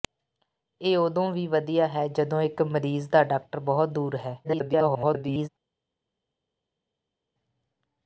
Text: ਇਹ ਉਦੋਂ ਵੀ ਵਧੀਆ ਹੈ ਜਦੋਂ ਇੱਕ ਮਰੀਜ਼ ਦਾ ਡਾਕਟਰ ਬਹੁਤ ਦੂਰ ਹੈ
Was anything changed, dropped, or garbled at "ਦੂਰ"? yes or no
no